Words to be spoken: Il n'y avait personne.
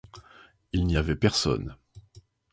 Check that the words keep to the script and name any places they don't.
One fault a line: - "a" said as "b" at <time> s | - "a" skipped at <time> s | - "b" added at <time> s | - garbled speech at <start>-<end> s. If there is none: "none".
none